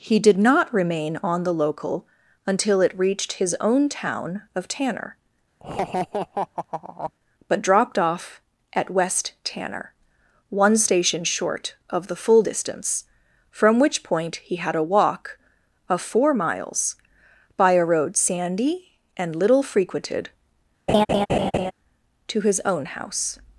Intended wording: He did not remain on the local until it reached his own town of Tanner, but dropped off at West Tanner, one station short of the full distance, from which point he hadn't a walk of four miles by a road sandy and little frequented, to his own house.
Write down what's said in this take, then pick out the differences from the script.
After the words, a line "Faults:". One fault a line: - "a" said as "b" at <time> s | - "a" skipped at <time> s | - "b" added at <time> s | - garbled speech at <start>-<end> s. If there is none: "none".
He did not remain on the local until it reached his own town of Tanner, but dropped off at West Tanner, one station short of the full distance, from which point he had a walk of four miles by a road sandy and little frequented, to his own house.
Faults:
- "hadn't" said as "had" at 14.6 s